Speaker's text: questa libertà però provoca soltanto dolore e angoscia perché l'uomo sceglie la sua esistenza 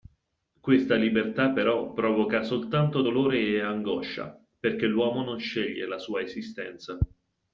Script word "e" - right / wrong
right